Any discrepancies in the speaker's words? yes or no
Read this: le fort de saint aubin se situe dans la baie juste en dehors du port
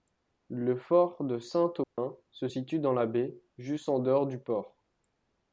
no